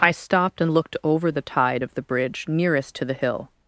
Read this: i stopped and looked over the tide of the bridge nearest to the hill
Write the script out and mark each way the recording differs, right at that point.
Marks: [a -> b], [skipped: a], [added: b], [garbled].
i stopped and looked over the tide of the bridge nearest to the hill